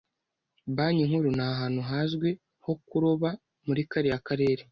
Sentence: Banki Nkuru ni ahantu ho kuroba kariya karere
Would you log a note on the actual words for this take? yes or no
yes